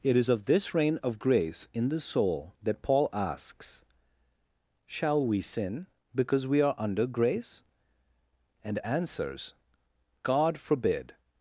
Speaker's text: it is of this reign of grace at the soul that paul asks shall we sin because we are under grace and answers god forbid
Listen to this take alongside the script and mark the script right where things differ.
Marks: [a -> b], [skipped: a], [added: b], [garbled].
it is of this reign of grace [at -> in] the soul that paul asks shall we sin because we are under grace and answers god forbid